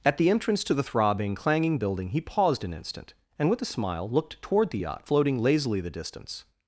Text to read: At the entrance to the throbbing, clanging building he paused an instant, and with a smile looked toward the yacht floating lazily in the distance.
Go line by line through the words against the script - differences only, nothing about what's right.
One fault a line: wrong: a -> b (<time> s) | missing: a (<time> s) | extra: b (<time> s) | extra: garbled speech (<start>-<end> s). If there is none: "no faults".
missing: in (5.8 s)